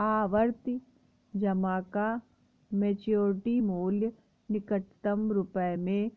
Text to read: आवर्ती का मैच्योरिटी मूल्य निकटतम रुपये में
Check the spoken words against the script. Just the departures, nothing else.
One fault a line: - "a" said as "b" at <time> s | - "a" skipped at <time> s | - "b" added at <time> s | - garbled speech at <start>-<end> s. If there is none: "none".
- "जमा" added at 1.3 s